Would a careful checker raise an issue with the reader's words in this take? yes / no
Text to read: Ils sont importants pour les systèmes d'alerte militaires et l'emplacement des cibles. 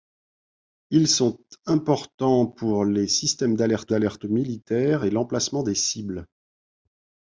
yes